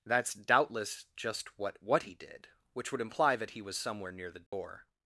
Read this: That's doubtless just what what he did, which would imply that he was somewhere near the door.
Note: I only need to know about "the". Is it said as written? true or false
true